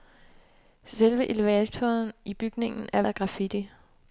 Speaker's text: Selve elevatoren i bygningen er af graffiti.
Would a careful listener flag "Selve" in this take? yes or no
no